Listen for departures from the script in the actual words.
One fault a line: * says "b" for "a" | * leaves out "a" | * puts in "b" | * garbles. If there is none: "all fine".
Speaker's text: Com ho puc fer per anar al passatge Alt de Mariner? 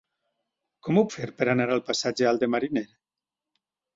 * leaves out "puc"